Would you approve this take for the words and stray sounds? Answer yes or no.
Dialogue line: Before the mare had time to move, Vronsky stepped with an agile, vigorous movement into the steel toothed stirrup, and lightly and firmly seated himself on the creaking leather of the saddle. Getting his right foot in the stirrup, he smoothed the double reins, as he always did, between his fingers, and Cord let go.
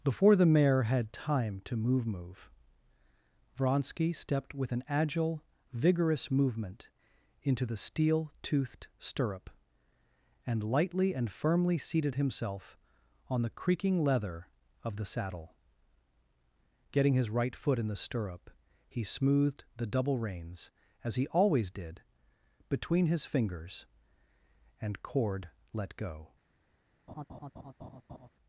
no